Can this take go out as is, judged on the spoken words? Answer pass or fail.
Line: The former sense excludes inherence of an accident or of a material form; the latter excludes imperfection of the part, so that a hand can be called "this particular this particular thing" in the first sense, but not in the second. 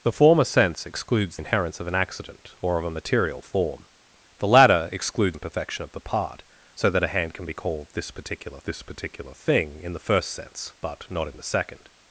pass